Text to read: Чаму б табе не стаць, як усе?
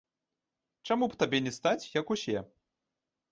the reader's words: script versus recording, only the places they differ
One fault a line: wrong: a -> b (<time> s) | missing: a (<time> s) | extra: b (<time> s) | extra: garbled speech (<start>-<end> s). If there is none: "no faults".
no faults